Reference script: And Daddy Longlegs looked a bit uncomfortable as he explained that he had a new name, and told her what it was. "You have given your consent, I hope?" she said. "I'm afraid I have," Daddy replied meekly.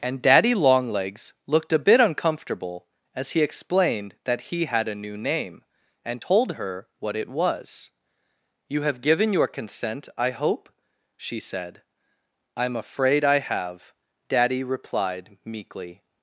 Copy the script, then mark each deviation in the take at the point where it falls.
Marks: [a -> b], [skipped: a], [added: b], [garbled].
And Daddy Longlegs looked a bit uncomfortable as he explained that he had a new name, and told her what it was. "You have given your consent, I hope?" she said. "I'm afraid I have," Daddy replied meekly.